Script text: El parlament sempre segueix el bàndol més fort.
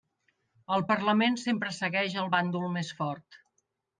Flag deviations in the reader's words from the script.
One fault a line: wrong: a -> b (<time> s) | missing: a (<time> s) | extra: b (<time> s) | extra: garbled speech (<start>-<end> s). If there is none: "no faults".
no faults